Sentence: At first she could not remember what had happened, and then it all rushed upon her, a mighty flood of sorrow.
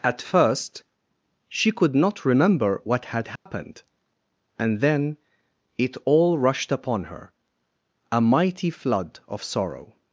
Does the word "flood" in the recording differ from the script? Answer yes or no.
no